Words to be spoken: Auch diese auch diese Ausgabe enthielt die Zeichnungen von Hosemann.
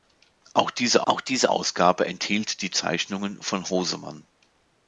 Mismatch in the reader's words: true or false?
false